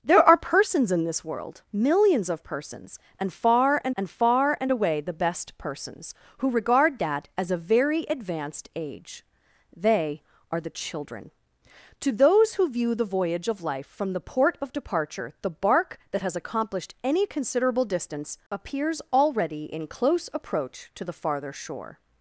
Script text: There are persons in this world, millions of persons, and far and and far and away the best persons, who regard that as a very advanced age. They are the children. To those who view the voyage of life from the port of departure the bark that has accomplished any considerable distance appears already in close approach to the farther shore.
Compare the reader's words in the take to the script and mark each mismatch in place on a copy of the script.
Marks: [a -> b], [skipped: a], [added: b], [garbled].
There are persons in this world, millions of persons, and far and and far and away the best persons, who regard that as a very advanced age. They are the children. To those who view the voyage of life from the port of departure the bark that has accomplished any considerable distance appears already in close approach to the farther shore.